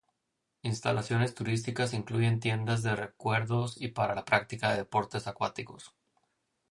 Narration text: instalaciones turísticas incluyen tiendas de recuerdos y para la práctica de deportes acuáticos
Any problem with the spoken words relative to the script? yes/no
no